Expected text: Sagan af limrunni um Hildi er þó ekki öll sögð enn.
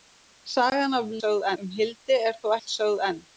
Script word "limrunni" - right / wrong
wrong